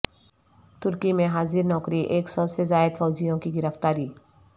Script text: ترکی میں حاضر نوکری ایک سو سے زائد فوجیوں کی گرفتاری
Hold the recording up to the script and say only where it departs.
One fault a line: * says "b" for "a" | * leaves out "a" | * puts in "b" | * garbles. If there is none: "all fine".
all fine